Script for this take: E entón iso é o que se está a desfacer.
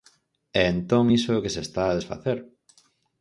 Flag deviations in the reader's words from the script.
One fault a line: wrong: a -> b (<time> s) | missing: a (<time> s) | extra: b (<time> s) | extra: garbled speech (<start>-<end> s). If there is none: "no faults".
no faults